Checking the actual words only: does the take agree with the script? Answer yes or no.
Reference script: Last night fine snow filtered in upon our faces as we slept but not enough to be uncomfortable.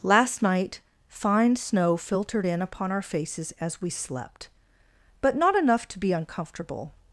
yes